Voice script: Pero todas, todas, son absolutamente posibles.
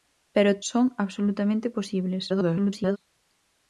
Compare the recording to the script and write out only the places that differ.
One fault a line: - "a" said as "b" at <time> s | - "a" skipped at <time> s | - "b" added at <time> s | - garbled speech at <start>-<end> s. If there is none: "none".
- "todas todas" skipped at 0.6 s
- garbled speech at 2.3-3.0 s